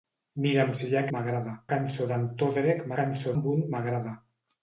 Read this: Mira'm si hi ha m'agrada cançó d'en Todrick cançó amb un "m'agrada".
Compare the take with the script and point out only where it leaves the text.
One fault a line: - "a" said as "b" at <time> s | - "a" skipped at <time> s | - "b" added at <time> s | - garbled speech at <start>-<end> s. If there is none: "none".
none